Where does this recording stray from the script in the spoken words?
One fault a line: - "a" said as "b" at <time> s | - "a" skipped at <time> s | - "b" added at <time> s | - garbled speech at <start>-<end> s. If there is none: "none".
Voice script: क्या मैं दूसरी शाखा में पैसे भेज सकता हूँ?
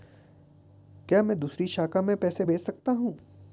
none